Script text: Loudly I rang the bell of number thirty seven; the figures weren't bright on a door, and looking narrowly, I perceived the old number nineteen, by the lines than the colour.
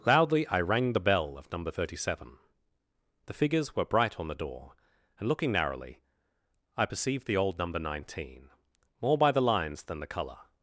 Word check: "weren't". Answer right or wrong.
wrong